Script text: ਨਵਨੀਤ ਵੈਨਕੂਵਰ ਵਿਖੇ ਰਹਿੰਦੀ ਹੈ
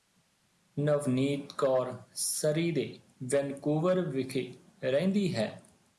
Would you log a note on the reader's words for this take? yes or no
yes